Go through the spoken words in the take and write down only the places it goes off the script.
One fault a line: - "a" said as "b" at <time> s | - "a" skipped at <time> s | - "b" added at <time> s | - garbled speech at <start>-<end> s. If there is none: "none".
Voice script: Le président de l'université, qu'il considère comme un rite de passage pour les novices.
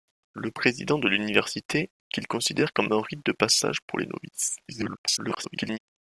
- garbled speech at 4.7-5.8 s